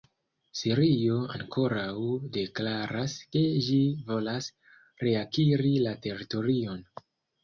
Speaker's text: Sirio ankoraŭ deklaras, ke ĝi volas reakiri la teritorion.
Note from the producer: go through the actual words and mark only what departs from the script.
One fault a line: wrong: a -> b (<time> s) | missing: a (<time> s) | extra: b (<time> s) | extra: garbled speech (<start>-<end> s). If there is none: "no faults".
no faults